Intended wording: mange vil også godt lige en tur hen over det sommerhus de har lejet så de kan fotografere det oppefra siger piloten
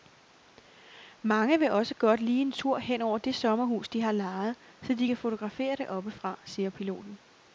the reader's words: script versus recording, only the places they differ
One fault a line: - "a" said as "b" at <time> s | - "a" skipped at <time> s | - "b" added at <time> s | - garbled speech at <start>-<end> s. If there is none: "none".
none